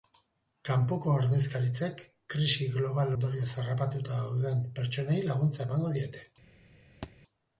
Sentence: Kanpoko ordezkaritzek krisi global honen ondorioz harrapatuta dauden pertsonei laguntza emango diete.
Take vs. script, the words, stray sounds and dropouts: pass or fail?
fail